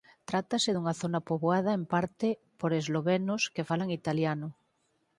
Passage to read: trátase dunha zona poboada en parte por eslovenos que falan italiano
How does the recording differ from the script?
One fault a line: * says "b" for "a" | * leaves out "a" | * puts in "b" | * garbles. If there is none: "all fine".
all fine